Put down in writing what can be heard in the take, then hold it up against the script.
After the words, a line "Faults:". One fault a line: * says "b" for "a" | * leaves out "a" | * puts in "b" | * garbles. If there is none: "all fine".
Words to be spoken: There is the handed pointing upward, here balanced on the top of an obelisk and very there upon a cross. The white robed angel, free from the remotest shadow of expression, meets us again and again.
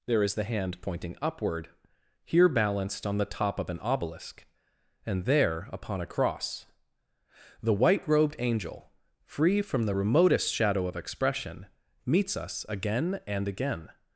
There is the hand pointing upward, here balanced on the top of an obelisk and there upon a cross. The white robed angel, free from the remotest shadow of expression, meets us again and again.
Faults:
* says "hand" for "handed"
* leaves out "very"